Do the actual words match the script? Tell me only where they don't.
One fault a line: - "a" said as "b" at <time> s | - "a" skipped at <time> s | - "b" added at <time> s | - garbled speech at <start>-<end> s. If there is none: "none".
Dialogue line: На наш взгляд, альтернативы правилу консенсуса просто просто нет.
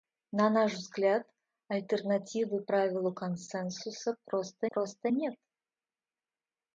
none